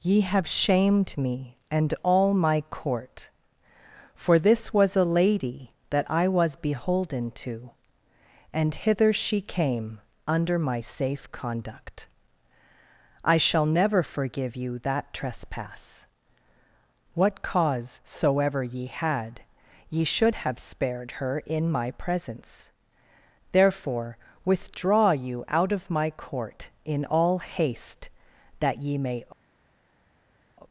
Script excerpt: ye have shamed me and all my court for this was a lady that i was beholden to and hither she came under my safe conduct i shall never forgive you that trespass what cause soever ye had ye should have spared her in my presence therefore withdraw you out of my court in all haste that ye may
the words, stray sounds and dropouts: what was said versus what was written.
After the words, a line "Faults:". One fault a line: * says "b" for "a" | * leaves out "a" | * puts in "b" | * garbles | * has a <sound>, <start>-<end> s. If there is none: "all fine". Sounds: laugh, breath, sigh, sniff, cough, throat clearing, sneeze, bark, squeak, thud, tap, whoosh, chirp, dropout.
ye have shamed me and all my court for this was a lady that i was beholden to and hither she came under my safe conduct i shall never forgive you that trespass what cause soever ye had ye should have spared her in my presence therefore withdraw you out of my court in all haste that ye may
Faults:
all fine